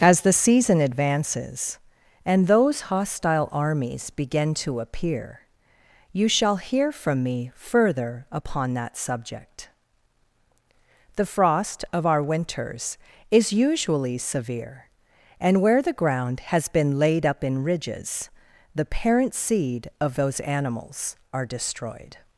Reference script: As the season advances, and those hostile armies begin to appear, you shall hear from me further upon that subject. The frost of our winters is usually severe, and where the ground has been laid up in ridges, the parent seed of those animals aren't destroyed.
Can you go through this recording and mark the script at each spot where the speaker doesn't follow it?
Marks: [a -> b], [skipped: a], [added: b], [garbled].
As the season advances, and those hostile armies begin to appear, you shall hear from me further upon that subject. The frost of our winters is usually severe, and where the ground has been laid up in ridges, the parent seed of those animals [aren't -> are] destroyed.